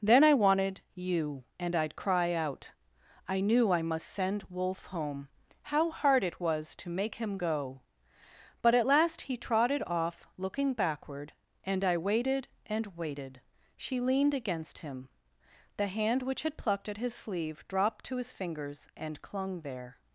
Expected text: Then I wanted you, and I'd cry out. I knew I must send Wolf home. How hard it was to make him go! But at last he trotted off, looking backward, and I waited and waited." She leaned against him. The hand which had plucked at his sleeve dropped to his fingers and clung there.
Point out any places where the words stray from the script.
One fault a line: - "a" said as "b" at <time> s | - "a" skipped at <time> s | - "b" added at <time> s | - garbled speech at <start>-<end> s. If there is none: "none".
none